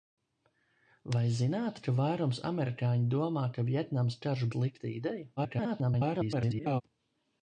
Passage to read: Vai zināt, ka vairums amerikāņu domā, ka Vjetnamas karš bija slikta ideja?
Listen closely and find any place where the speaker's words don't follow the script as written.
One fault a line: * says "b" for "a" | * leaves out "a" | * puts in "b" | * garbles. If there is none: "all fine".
* leaves out "bija"
* garbles